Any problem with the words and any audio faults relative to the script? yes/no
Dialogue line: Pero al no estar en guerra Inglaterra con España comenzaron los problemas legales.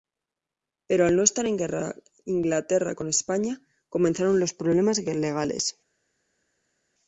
no